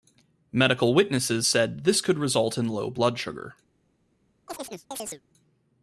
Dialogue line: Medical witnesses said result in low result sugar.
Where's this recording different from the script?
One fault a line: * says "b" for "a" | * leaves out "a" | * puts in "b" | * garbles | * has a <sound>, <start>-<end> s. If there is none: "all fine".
* puts in "this could"
* says "blood" for "result"
* has a chirp, 4.5-5.2 s